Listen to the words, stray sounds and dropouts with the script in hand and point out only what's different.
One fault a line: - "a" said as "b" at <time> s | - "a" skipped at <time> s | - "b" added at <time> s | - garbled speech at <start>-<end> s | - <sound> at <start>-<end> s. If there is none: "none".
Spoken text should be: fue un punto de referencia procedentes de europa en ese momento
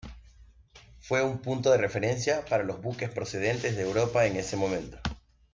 - "para los buques" added at 2.5 s